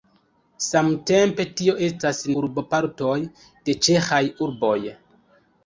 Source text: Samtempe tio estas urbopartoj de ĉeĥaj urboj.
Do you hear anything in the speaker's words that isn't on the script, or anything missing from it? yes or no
no